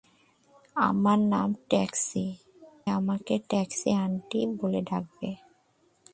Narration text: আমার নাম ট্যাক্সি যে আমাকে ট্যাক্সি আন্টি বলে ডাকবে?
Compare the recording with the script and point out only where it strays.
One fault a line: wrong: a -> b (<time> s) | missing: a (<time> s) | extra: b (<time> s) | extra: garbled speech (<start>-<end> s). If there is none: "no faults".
missing: যে (2.2 s)